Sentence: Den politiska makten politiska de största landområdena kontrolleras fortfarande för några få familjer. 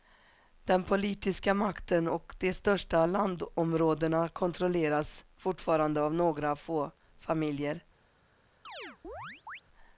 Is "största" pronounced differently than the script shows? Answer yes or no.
no